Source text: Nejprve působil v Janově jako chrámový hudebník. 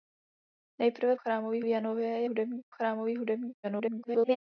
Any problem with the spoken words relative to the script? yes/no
yes